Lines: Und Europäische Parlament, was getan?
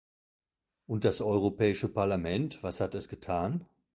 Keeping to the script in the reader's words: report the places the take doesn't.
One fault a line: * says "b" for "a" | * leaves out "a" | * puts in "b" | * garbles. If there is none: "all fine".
* puts in "das"
* puts in "hat es"